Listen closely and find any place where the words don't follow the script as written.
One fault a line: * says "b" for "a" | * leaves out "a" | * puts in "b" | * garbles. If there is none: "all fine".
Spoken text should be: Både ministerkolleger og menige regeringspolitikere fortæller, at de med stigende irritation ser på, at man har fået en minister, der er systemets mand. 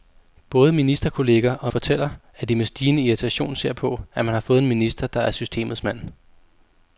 * leaves out "menige regeringspolitikere"